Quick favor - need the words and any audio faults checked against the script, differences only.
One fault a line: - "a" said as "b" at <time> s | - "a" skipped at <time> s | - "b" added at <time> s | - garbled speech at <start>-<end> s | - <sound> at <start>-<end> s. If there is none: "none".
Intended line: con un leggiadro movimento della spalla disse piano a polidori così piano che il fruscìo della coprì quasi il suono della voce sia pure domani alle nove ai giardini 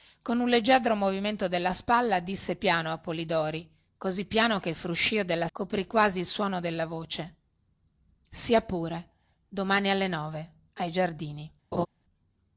- laugh at 11.7-11.9 s